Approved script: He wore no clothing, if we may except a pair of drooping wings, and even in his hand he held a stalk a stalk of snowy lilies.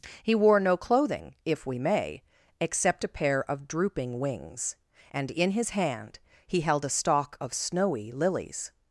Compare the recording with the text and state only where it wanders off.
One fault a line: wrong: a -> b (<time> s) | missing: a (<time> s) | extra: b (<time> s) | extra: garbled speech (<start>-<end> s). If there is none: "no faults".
missing: even (5.3 s)
missing: a stalk (7.4 s)